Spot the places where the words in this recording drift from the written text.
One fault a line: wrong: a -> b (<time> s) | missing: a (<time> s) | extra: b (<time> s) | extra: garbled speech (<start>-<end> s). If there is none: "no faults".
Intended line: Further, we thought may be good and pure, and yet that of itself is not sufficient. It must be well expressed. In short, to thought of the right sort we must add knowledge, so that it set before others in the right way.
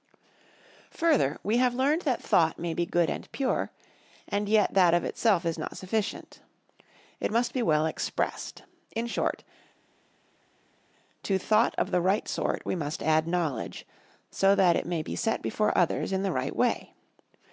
extra: have learned that (1.6 s)
extra: may be (14.9 s)